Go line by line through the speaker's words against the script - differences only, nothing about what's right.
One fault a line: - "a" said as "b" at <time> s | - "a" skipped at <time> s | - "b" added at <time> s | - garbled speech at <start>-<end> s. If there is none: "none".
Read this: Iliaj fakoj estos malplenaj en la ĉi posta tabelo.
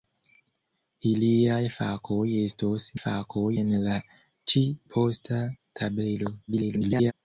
- "malplenaj" said as "fakoj" at 3.0 s
- garbled speech at 6.5-7.1 s